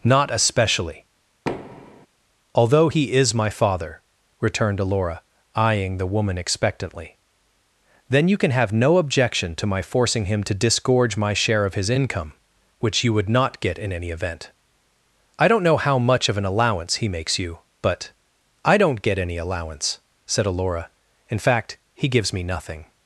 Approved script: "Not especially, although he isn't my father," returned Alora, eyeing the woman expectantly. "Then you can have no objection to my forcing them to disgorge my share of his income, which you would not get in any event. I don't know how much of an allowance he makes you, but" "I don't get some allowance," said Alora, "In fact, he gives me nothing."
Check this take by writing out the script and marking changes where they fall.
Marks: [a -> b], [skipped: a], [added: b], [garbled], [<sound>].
"Not especially, [thud] although he [isn't -> is] my father," returned Alora, eyeing the woman expectantly. "Then you can have no objection to my forcing [them -> him] to disgorge my share of his income, which you would not get in any event. I don't know how much of an allowance he makes you, but" "I don't get [some -> any] allowance," said Alora, "In fact, he gives me nothing."